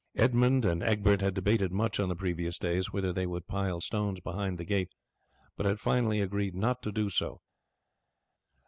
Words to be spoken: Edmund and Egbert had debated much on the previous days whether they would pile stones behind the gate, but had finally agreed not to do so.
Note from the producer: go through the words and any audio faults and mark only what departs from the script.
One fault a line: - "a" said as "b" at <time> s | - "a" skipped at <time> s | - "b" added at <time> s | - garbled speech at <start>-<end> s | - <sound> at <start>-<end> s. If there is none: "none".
none